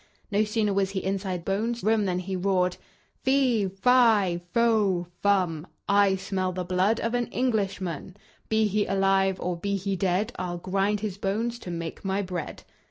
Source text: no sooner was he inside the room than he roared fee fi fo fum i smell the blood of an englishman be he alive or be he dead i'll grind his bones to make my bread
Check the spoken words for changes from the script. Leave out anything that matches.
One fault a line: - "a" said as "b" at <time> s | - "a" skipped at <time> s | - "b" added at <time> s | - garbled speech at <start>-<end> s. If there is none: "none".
- "the" said as "bones" at 1.4 s